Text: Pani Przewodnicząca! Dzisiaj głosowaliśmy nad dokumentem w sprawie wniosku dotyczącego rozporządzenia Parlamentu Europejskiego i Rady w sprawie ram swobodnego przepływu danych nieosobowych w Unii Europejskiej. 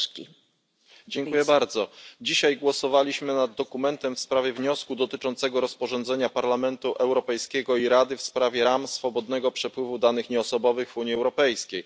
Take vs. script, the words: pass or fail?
pass